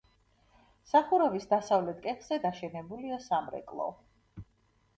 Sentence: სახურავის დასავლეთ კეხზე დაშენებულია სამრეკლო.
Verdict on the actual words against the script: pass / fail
pass